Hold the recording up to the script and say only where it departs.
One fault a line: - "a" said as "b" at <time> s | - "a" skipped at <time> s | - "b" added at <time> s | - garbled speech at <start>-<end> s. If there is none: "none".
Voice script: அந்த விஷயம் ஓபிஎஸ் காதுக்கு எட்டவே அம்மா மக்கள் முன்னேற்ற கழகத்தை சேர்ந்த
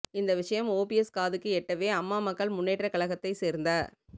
- "அந்த" said as "இந்த" at 0.1 s